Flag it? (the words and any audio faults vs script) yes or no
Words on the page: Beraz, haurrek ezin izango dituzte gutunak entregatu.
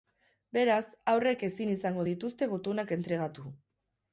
no